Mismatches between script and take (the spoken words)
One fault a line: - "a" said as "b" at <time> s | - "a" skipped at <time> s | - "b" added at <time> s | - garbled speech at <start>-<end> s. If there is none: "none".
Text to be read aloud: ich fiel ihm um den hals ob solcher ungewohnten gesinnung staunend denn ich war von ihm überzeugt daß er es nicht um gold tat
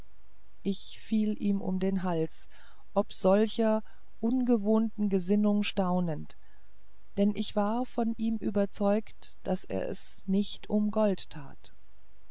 none